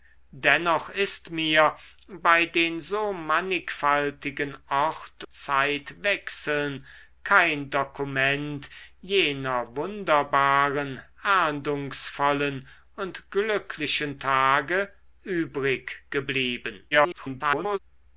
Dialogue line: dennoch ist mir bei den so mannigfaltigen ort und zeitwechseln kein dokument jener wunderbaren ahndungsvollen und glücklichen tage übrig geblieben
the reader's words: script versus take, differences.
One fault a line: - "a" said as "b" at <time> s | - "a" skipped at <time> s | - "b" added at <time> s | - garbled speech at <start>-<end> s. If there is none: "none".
- "und" skipped at 5.2 s
- garbled speech at 16.9-17.8 s